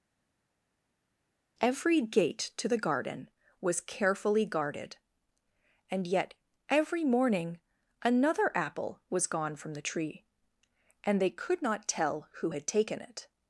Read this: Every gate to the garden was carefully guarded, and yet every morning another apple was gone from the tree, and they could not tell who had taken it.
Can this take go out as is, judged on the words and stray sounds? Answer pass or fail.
pass